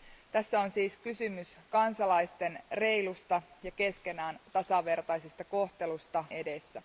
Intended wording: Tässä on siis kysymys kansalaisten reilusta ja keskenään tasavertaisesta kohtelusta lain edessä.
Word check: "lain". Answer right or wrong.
wrong